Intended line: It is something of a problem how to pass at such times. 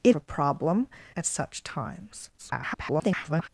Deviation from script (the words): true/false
true